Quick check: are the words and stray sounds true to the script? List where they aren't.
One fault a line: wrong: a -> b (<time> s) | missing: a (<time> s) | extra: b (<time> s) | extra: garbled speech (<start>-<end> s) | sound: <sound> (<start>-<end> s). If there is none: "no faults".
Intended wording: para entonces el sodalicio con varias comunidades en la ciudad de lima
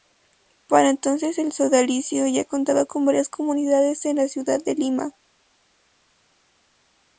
extra: ya contaba (2.2 s)